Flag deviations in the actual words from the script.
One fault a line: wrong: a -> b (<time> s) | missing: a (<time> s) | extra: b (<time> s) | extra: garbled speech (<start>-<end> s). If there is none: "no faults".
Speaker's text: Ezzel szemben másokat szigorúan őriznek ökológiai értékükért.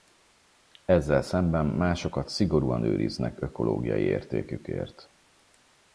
no faults